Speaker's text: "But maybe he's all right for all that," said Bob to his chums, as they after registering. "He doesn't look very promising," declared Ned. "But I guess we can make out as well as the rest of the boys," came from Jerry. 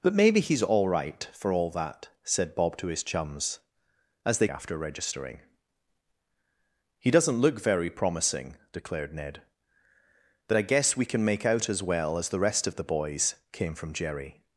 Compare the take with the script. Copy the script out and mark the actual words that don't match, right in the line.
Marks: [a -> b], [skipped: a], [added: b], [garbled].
"But maybe he's all right for all that," said Bob to his chums, as they after registering. "He doesn't look very promising," declared Ned. "But I guess we can make out as well as the rest of the boys," came from Jerry.